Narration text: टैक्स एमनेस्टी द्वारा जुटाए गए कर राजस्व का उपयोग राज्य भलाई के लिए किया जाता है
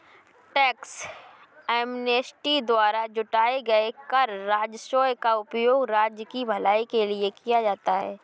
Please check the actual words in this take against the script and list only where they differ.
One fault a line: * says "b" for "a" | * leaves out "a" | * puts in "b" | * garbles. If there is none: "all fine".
* puts in "की"